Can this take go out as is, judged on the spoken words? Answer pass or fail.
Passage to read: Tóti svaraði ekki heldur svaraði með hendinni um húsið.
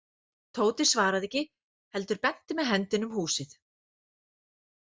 fail